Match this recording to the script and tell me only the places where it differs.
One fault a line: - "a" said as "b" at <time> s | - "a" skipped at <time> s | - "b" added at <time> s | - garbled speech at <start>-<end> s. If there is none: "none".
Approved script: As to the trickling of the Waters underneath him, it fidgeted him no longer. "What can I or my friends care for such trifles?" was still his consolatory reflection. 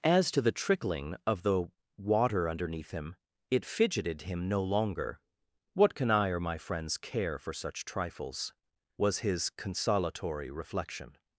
- "Waters" said as "Water" at 2.0 s
- "still" skipped at 9.2 s